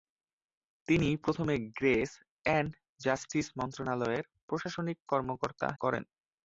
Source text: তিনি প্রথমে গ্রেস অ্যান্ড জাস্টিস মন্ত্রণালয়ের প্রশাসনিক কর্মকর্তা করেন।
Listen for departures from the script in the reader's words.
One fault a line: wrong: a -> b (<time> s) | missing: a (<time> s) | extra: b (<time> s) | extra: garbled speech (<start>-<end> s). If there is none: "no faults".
no faults